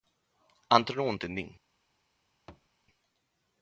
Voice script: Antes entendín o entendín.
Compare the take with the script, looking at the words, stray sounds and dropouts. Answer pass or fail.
fail